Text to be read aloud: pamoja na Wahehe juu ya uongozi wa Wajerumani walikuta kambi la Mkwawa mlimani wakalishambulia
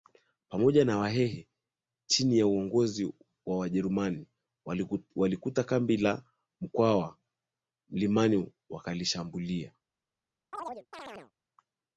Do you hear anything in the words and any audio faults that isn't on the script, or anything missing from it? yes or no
yes